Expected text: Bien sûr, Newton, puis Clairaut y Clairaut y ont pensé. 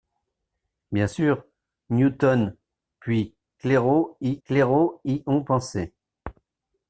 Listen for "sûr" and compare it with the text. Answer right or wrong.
right